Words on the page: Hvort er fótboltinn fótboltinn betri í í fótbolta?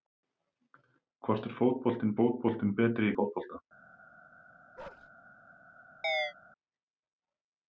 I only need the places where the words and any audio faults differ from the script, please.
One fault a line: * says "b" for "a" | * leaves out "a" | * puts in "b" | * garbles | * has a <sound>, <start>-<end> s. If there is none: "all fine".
* has a bark, 4.8-5.1 s
* has a chirp, 6.0-6.3 s